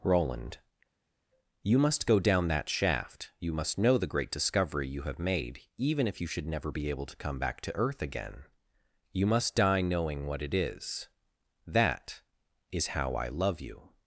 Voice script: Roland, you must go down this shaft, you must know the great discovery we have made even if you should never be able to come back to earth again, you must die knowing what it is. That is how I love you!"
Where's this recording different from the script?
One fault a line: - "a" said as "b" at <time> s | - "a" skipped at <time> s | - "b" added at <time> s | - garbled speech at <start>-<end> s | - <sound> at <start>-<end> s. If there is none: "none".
- "this" said as "that" at 2.5 s
- "we" said as "you" at 4.9 s